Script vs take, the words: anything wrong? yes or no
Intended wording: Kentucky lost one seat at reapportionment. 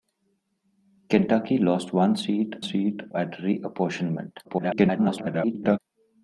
yes